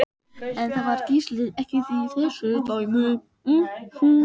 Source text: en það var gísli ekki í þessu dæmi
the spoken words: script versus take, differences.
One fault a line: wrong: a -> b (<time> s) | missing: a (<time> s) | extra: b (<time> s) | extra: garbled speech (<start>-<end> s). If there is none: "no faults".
no faults